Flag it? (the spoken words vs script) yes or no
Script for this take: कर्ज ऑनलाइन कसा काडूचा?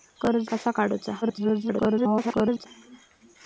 yes